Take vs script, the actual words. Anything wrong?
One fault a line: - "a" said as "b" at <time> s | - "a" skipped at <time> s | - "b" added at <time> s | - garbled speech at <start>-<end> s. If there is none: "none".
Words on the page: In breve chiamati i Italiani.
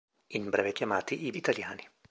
none